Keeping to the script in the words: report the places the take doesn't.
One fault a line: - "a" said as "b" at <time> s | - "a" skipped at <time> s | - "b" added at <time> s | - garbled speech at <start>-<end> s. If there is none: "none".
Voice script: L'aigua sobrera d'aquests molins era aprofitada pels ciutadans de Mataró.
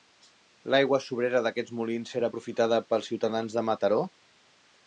none